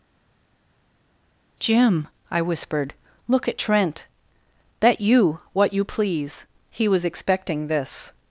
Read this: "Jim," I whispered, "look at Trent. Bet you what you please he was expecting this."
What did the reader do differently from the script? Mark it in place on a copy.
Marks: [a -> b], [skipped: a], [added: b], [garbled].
"Jim," I whispered, "look at Trent. Bet you what you please he was expecting this."